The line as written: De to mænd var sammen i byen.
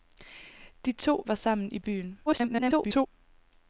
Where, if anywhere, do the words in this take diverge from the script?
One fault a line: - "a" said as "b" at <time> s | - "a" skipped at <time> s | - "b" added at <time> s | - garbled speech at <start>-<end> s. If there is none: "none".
- "mænd" skipped at 1.2 s
- garbled speech at 2.3-3.1 s